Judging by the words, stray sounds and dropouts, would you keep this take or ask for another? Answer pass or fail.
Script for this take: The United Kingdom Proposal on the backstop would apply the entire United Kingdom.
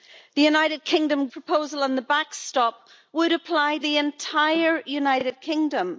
pass